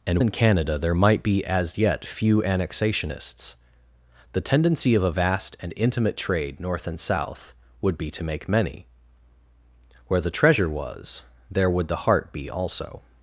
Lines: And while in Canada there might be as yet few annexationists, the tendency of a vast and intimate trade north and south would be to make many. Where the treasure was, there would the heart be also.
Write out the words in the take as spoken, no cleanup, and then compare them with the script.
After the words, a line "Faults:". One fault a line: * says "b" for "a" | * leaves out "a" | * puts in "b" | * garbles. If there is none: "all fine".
And in Canada there might be as yet few annexationists, the tendency of a vast and intimate trade north and south would be to make many. Where the treasure was, there would the heart be also.
Faults:
* leaves out "while"